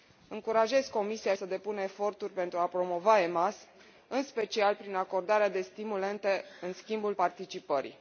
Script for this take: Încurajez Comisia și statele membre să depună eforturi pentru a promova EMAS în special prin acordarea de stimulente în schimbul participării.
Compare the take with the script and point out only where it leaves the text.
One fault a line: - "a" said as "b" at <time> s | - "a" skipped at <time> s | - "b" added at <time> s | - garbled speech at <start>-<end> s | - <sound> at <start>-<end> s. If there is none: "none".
- "și statele membre" skipped at 1.3 s